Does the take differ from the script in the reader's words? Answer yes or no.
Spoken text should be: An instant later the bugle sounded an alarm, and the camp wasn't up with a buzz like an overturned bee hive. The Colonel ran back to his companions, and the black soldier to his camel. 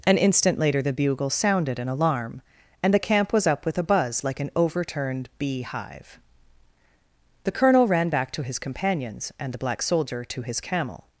yes